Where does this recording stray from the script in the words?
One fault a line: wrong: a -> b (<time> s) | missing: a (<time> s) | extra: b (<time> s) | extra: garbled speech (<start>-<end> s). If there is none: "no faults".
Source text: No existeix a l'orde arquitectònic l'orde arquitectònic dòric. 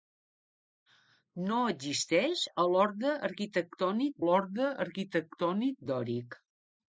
no faults